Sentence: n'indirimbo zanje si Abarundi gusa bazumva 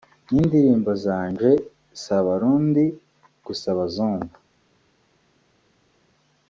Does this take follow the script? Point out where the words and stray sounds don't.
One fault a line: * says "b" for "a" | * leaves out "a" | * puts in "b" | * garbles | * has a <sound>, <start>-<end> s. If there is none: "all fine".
all fine